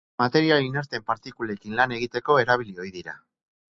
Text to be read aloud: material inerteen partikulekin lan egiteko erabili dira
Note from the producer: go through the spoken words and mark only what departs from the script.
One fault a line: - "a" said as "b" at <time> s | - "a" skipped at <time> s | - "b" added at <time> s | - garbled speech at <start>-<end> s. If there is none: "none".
- "ohi" added at 2.9 s